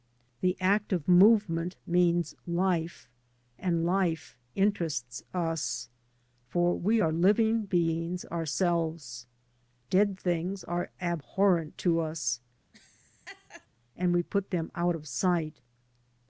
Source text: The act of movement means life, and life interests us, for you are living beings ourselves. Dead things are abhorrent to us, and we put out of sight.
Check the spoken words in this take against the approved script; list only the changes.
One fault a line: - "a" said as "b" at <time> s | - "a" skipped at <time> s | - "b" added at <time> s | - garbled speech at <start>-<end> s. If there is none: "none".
- "you" said as "we" at 6.8 s
- "them" added at 14.5 s